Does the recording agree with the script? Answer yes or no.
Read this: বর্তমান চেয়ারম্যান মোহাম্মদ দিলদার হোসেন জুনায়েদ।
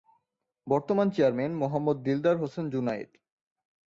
yes